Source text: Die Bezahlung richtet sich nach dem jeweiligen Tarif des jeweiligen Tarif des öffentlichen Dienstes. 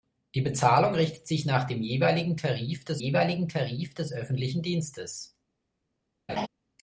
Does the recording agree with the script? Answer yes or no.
yes